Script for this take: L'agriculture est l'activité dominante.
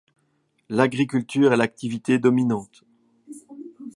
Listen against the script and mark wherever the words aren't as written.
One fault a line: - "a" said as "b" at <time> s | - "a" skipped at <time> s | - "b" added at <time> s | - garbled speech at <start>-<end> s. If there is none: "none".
none